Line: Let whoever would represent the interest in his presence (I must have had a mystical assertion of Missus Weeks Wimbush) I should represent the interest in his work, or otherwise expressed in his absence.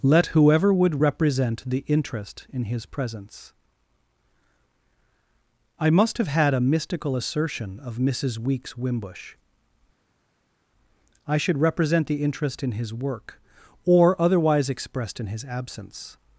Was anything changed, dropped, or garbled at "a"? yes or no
no